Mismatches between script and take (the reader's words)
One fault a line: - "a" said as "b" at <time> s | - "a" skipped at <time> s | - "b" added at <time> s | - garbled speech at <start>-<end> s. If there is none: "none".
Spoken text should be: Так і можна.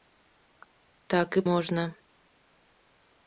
none